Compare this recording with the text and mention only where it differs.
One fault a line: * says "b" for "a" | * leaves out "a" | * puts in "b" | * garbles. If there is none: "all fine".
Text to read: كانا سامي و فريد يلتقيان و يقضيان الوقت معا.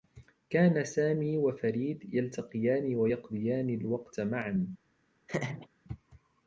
all fine